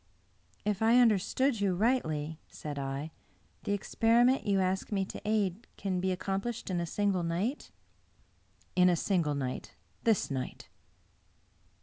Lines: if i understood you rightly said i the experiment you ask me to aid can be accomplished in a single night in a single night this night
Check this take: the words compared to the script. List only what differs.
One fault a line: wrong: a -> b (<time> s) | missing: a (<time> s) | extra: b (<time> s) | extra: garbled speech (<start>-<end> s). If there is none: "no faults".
no faults